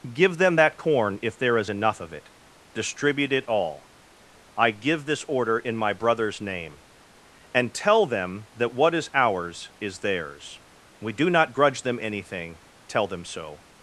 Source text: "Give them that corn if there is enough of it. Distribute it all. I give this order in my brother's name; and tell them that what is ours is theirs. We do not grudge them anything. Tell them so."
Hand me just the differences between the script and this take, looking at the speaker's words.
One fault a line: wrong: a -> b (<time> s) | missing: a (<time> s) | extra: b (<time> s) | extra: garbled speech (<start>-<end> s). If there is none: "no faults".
no faults